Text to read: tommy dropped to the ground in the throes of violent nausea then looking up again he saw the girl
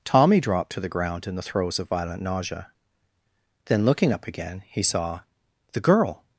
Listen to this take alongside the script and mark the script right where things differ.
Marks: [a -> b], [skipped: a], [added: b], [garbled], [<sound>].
tommy dropped to the ground in the throes of violent nausea then looking up again he saw the girl